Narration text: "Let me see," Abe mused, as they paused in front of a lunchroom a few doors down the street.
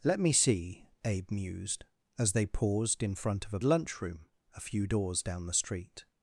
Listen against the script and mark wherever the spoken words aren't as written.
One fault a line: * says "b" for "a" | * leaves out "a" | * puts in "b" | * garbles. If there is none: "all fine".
all fine